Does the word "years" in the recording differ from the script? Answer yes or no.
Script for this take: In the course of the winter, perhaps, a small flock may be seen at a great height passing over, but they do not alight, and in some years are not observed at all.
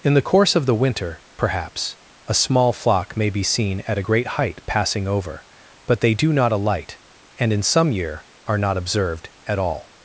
yes